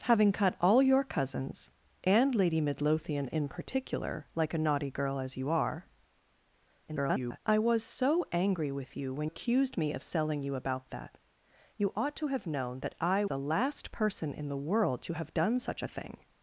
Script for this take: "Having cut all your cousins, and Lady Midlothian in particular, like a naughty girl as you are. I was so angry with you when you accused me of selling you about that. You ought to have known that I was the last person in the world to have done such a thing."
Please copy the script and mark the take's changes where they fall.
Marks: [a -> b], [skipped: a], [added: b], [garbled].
"Having cut all your cousins, and Lady Midlothian in particular, like a naughty girl as you are. [garbled] I was so angry with you when [skipped: you] accused me of selling you about that. You ought to have known that I [skipped: was] the last person in the world to have done such a thing."